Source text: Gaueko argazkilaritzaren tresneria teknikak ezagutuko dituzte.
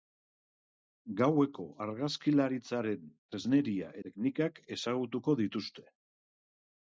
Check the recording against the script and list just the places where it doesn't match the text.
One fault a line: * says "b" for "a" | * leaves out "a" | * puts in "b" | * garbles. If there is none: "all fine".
all fine